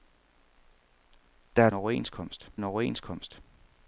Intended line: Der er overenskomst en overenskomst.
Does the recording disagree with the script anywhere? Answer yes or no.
no